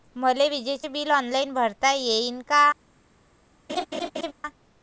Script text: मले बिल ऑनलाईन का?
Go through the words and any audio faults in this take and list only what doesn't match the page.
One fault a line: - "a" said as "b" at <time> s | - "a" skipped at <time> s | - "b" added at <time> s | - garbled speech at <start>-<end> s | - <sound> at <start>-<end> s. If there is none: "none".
- "विजेच" added at 0.5 s
- "भरता येईन" added at 1.5 s
- laugh at 3.7-4.3 s